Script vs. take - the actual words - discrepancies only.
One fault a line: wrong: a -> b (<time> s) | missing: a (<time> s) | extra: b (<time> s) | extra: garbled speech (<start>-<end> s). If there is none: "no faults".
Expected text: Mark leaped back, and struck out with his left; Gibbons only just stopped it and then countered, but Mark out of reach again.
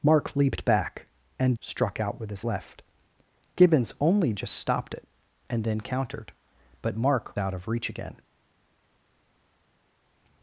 no faults